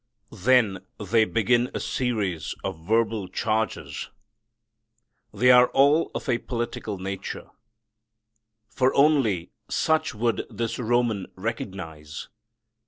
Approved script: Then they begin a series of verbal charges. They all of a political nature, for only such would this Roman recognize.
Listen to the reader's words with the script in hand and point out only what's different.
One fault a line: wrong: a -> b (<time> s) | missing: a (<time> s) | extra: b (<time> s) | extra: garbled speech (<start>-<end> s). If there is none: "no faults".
extra: are (5.5 s)